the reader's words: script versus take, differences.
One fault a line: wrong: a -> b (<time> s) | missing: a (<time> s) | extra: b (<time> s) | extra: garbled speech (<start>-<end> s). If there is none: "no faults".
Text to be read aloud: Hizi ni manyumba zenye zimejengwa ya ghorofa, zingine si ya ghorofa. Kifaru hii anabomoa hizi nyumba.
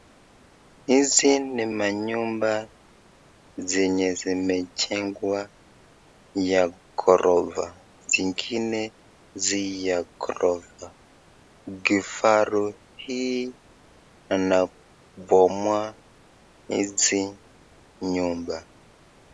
no faults